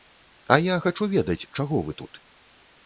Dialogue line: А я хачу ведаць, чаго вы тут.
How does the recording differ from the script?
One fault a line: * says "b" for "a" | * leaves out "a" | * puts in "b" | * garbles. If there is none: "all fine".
all fine